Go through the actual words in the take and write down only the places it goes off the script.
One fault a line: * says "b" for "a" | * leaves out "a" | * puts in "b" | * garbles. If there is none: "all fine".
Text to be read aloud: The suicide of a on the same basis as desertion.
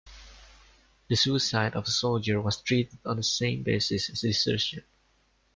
* puts in "soldier was treated"